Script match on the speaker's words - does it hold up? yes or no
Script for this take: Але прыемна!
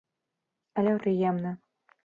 yes